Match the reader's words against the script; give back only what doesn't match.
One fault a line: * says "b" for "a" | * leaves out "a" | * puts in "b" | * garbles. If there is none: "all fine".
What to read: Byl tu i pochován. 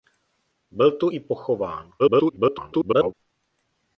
* garbles